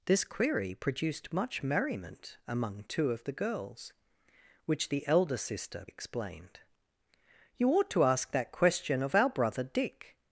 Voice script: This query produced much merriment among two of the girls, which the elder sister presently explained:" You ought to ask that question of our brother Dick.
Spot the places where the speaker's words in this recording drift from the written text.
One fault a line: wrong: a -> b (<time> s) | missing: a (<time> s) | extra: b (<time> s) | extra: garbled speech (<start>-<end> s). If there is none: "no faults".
missing: presently (5.8 s)